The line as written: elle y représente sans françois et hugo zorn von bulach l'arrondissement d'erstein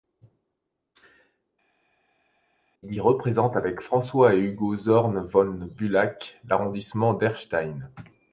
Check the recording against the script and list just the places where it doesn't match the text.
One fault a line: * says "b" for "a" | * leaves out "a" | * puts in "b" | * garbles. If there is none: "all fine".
* says "il" for "elle"
* says "avec" for "sans"